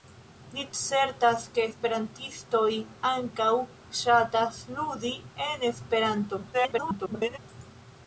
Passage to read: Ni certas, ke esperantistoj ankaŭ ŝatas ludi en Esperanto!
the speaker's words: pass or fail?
fail